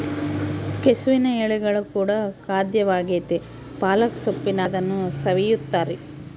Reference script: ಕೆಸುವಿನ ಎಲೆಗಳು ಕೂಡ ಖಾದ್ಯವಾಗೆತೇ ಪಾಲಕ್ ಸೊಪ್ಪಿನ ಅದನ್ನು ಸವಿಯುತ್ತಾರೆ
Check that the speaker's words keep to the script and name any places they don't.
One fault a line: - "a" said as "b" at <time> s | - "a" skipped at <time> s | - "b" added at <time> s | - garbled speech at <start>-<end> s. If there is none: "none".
none